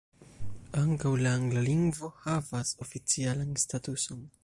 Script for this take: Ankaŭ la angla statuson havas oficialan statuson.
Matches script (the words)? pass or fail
fail